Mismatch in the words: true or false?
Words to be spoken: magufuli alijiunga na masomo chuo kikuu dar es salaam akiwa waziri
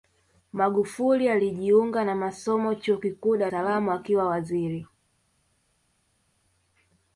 true